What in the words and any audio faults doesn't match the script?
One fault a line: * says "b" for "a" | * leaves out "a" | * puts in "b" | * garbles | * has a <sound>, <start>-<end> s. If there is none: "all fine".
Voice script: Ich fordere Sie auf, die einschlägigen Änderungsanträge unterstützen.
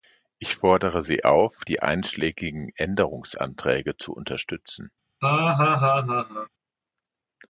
* puts in "zu"
* has a laugh, 5.2-6.5 s